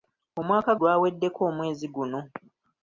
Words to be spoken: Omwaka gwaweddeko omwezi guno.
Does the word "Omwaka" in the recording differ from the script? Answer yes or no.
no